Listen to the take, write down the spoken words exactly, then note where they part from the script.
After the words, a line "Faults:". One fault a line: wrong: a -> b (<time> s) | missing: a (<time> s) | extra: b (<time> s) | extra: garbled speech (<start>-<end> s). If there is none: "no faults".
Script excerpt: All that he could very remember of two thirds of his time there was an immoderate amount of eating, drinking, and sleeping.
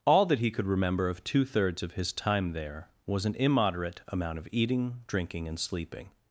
All that he could remember of two thirds of his time there was an immoderate amount of eating, drinking, and sleeping.
Faults:
missing: very (0.7 s)